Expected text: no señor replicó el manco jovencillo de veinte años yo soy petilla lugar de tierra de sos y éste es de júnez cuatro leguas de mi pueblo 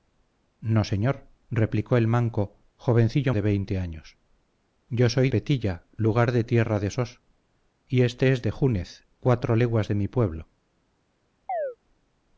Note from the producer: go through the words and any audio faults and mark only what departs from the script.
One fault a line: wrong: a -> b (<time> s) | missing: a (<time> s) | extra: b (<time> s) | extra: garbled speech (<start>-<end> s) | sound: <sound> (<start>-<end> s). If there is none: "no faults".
sound: chirp (11.5-11.8 s)